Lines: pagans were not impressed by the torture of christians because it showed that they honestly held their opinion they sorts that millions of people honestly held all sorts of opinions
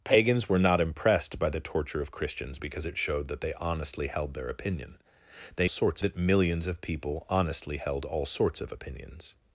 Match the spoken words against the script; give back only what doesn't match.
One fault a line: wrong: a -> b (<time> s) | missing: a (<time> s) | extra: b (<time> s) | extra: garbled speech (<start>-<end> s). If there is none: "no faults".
no faults